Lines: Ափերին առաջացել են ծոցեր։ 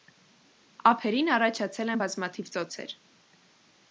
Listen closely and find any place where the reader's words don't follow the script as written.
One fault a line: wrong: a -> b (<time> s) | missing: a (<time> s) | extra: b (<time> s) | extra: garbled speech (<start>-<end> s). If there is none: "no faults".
extra: բազմաթիվ (2.0 s)